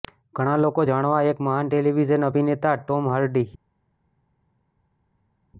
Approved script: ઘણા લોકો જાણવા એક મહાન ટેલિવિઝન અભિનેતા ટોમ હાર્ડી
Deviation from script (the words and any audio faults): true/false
false